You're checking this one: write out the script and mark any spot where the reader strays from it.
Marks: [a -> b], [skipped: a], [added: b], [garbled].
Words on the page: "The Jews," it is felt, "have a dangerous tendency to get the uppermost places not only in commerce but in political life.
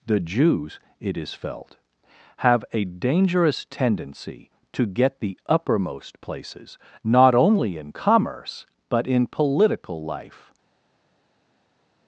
"The Jews," it is felt, "have a dangerous tendency to get the uppermost places not only in commerce but in political life.